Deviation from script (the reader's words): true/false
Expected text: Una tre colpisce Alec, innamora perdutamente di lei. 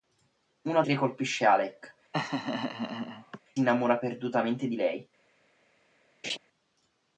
false